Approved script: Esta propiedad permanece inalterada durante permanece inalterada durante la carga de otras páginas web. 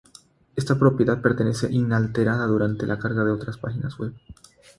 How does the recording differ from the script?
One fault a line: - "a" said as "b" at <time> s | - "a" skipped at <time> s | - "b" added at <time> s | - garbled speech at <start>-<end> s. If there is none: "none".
- "permanece inalterada durante" skipped at 2.9 s